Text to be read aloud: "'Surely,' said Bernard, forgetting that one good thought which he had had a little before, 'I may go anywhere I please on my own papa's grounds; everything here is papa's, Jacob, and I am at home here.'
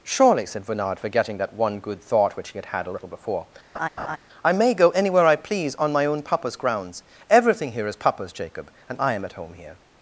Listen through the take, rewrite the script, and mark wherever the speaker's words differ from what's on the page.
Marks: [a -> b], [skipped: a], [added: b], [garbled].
"'Surely,' said Bernard, forgetting that one good thought which he had had a little before, 'I may go anywhere I please on my own papa's grounds; everything here is papa's, Jacob, and I am at home here.'